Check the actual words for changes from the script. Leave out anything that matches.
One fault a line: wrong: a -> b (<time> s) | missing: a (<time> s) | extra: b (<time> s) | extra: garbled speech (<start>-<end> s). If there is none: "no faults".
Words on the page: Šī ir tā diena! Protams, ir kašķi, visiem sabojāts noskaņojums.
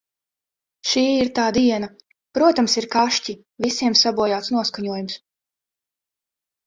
no faults